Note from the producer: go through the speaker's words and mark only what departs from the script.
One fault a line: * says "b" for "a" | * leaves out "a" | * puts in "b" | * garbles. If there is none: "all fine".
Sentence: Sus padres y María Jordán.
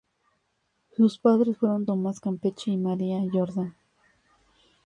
* puts in "fueron Tomás Campeche"